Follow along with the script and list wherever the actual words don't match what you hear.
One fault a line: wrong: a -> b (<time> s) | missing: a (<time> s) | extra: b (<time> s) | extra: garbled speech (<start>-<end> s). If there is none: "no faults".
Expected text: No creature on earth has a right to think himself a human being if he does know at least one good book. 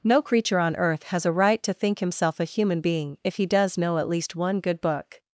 no faults